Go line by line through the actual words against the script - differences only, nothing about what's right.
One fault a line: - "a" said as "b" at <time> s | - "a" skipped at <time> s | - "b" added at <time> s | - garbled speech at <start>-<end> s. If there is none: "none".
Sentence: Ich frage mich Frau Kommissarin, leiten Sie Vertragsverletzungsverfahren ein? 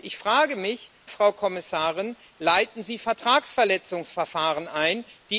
none